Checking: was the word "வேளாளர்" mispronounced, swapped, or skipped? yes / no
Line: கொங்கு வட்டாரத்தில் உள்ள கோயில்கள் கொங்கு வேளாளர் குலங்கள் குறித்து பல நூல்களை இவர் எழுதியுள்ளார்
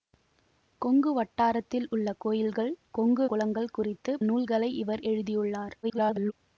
yes